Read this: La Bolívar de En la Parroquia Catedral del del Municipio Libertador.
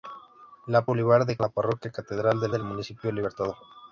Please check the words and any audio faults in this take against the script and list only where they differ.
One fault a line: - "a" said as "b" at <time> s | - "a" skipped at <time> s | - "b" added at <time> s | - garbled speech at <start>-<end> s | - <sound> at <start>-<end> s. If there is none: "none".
none